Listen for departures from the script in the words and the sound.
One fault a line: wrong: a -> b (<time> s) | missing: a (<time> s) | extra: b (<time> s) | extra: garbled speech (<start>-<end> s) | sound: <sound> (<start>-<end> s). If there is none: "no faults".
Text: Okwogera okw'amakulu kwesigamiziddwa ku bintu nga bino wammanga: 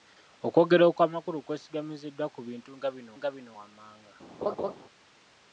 extra: nga bino (3.2 s)
sound: laugh (4.4-4.7 s)